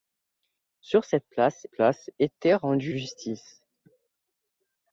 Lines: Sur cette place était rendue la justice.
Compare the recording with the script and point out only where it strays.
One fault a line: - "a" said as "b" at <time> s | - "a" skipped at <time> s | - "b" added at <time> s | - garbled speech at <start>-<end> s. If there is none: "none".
- "place" added at 1.7 s
- "la" skipped at 2.9 s